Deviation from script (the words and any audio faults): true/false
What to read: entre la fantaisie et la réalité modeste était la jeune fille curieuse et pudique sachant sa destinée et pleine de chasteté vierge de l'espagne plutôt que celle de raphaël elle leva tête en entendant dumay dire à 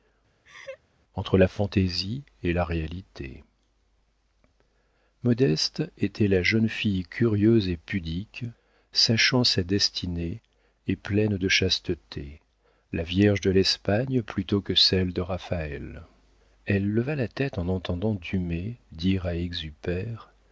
true